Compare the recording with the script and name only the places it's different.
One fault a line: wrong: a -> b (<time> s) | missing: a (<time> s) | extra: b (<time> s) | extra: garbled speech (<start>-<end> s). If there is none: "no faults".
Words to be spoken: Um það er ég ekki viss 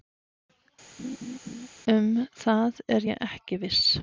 no faults